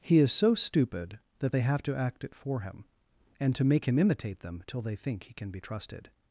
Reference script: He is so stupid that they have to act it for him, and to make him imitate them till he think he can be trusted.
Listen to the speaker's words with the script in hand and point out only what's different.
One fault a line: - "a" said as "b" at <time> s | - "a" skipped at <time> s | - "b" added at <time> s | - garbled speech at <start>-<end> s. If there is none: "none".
- "he" said as "they" at 4.8 s